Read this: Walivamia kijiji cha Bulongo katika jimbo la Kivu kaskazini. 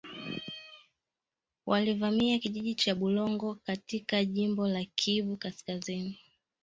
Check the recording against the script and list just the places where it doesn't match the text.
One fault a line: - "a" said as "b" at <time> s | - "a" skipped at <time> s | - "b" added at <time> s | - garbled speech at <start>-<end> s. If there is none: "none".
none